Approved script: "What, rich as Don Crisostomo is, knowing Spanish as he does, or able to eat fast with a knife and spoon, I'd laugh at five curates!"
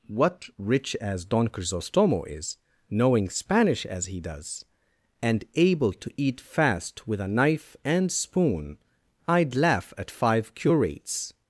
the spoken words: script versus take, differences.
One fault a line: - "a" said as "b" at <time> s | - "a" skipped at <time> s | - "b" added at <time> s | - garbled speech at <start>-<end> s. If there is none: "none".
- "or" said as "and" at 5.2 s